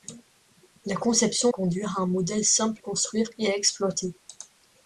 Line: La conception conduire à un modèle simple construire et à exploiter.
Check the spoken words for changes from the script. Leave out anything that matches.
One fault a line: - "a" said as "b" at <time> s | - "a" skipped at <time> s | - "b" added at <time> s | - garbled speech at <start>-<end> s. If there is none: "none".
none